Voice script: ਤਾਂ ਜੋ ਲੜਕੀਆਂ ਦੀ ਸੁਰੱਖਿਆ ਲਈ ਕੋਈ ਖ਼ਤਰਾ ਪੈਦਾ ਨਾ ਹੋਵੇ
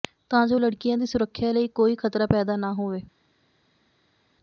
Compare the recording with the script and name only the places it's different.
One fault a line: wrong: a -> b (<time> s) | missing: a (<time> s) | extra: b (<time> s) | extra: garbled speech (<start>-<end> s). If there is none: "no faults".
no faults